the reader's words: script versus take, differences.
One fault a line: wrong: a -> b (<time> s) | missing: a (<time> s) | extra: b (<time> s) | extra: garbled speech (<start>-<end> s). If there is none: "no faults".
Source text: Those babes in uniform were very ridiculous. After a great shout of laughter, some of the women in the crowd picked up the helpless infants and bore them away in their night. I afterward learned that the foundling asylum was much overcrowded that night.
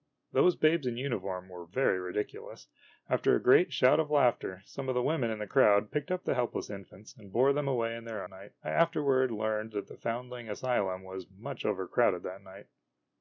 no faults